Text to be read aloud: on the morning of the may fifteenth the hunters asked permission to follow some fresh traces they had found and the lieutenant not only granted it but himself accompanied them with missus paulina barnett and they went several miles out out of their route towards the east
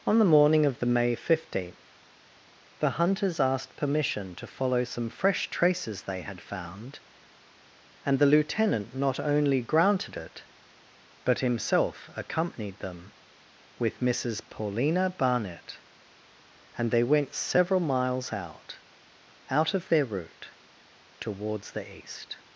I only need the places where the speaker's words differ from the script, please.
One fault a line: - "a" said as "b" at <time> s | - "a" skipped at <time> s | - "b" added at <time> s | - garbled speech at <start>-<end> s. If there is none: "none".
none